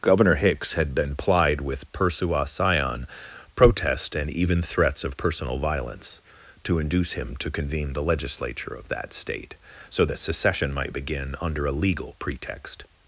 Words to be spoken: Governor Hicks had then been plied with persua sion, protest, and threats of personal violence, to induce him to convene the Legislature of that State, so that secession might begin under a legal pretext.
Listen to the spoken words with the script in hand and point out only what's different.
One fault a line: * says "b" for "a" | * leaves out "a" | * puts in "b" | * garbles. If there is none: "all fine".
* leaves out "then"
* puts in "even"